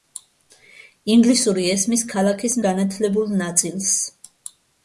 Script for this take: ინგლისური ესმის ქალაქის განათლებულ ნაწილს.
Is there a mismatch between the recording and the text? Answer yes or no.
no